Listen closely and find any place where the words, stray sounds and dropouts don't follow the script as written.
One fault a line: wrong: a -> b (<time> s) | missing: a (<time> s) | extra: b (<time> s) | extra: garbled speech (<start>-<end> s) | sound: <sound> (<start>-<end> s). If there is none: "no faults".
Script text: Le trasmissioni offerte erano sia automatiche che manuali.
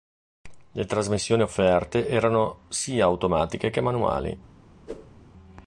sound: whoosh (4.9-5.1 s)